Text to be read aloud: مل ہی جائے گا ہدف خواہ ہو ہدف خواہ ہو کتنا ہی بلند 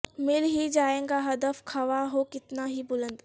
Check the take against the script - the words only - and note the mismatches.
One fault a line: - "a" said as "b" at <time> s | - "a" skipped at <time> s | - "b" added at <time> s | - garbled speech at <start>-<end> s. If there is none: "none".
- "ہدف خواہ ہو" skipped at 2.2 s